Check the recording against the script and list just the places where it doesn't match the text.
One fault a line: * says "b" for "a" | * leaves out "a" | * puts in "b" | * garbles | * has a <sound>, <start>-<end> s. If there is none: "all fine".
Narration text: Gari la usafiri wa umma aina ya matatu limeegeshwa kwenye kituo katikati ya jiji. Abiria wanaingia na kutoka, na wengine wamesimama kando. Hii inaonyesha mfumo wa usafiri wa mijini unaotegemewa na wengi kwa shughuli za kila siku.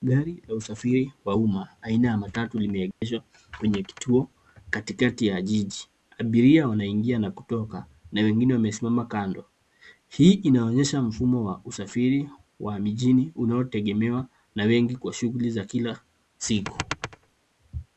* has a dropout, 2.9-3.0 s